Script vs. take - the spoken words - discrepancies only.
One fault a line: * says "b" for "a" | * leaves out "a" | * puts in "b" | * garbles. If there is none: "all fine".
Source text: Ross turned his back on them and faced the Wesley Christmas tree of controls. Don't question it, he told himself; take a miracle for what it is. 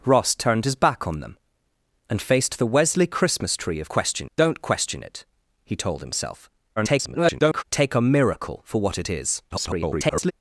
* says "question" for "controls"
* garbles
* garbles